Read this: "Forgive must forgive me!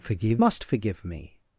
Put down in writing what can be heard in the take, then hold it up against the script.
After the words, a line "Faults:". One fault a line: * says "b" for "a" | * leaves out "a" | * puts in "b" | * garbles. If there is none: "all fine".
"Forgive must forgive me!
Faults:
all fine